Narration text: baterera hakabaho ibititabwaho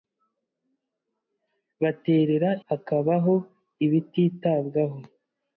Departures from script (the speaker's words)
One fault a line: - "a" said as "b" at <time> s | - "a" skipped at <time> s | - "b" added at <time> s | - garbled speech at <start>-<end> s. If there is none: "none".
none